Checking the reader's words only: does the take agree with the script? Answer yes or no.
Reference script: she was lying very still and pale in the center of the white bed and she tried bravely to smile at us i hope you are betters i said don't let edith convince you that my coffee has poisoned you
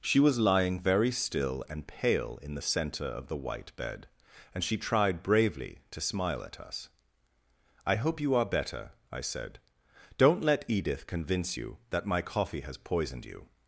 no